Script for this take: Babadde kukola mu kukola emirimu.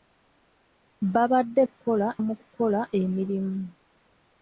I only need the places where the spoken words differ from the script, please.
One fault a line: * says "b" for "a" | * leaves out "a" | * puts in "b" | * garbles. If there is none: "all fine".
all fine